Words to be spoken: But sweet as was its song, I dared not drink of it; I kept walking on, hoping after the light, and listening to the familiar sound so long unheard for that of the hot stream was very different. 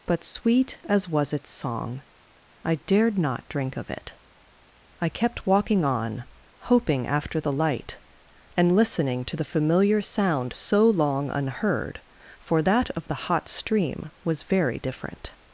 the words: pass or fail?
pass